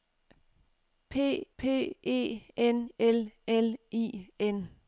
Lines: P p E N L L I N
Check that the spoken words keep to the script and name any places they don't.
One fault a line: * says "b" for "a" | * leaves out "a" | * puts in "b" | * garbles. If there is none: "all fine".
all fine